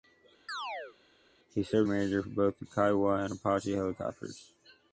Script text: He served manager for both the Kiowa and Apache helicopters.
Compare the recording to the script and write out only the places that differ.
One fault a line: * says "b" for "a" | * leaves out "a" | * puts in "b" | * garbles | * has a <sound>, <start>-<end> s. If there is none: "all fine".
* has a chirp, 0.5-1.0 s